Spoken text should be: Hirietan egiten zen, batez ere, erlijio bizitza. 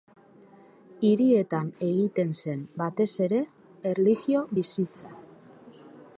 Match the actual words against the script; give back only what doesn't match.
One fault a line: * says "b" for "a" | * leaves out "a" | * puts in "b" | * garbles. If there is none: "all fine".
all fine